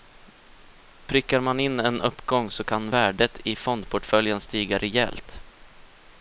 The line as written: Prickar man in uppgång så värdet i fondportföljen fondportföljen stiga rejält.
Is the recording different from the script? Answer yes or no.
yes